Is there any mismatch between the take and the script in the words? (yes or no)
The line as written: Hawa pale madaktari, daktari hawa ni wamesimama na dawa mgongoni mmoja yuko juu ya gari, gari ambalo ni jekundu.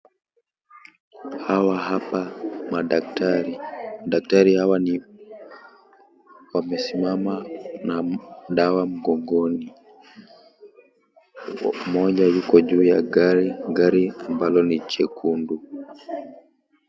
yes